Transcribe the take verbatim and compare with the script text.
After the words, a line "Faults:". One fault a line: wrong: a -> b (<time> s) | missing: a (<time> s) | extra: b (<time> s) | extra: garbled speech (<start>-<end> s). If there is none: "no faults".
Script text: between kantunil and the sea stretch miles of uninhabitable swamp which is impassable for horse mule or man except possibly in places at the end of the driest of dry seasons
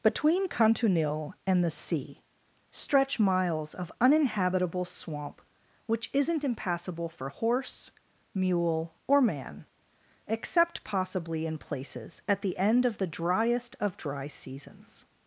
between kantunil and the sea stretch miles of uninhabitable swamp which isn't impassable for horse mule or man except possibly in places at the end of the driest of dry seasons
Faults:
wrong: is -> isn't (6.1 s)